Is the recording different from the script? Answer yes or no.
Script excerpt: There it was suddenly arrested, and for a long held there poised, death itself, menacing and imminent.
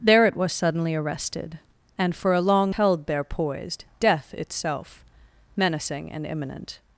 no